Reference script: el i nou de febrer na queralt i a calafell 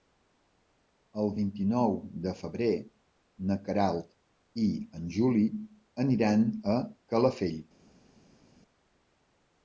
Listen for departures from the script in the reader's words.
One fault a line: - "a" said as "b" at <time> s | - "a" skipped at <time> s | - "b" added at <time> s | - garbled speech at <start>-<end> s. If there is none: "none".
- "vint" added at 1.4 s
- "en juli aniran" added at 5.0 s